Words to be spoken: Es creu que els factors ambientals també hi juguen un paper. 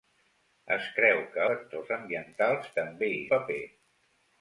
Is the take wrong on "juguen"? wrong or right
wrong